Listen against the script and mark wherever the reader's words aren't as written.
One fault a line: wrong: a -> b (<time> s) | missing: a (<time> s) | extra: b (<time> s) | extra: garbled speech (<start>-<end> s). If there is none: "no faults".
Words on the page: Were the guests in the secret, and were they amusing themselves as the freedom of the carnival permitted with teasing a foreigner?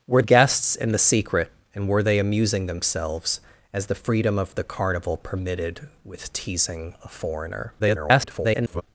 missing: the (0.2 s)
extra: garbled speech (7.8-8.8 s)